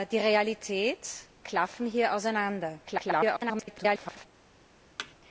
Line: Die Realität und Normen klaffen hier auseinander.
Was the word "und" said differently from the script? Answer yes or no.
yes